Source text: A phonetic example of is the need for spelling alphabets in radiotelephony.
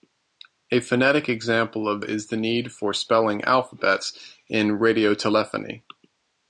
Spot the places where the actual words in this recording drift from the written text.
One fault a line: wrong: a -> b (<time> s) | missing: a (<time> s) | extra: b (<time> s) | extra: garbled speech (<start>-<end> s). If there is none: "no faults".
no faults